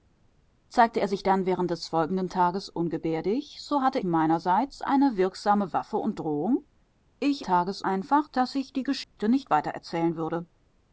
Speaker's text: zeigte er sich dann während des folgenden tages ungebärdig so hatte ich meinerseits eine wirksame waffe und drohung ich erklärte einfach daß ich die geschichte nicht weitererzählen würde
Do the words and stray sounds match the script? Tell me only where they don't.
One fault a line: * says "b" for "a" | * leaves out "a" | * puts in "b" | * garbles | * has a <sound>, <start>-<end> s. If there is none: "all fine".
* leaves out "ich"
* says "tages" for "erklärte"
* has a dropout, 9.0-9.2 s